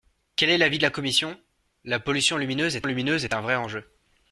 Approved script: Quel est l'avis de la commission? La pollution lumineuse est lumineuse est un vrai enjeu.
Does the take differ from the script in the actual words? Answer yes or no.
no